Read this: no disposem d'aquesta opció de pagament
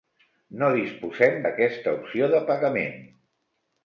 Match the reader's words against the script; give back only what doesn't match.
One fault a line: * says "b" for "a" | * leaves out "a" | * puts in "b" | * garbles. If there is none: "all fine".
all fine